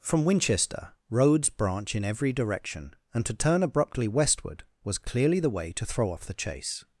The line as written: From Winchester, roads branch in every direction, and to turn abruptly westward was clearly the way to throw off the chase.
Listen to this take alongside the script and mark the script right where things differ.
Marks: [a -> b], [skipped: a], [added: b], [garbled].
From Winchester, roads branch in every direction, and to turn abruptly westward was clearly the way to throw off the chase.